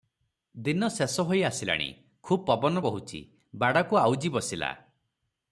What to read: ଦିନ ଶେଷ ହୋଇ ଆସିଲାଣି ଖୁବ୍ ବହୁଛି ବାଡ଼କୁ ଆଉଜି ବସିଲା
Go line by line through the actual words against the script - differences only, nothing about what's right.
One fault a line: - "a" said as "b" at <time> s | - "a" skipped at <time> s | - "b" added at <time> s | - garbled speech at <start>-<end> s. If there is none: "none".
- "ପବନ" added at 2.5 s